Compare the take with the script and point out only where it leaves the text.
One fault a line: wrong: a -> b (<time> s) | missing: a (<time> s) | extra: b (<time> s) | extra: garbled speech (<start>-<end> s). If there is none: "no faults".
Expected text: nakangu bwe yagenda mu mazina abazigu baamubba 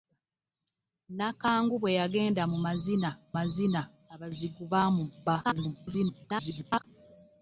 extra: mazina (3.4 s)
extra: garbled speech (5.4-6.8 s)